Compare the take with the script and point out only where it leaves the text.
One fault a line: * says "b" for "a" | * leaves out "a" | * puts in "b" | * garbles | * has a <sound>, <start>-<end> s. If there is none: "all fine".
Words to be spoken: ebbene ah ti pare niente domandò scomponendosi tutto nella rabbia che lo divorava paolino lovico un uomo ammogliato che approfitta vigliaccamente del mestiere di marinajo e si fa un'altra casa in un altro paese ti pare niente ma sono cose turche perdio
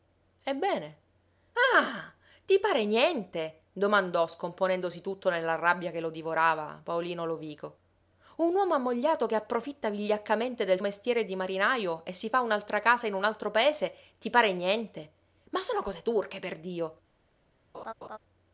* has a laugh, 17.7-18.2 s